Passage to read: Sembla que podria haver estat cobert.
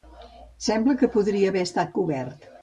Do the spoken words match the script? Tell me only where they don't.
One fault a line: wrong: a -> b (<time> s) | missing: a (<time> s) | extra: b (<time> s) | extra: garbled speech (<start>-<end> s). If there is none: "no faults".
no faults